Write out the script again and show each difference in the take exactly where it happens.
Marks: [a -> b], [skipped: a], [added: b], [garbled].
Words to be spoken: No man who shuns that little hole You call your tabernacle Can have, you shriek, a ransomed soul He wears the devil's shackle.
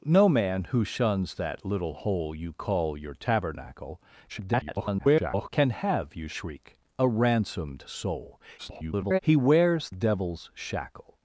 No man who shuns that little hole You call your tabernacle [garbled] Can have, you shriek, a ransomed soul [garbled] He wears [skipped: the] devil's shackle.